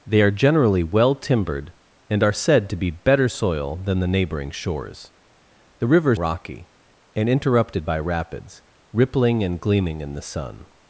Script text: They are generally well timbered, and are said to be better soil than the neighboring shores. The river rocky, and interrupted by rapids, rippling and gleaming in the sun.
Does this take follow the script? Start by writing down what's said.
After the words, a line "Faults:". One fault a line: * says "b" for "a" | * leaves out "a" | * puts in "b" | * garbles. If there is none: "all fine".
They are generally well timbered, and are said to be better soil than the neighboring shores. The river rocky, and interrupted by rapids, rippling and gleaming in the sun.
Faults:
all fine